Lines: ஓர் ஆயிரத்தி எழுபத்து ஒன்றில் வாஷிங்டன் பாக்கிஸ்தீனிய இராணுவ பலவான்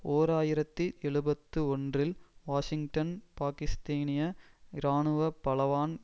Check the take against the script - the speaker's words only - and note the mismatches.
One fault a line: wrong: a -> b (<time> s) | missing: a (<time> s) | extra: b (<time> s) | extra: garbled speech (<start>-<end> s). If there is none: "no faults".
no faults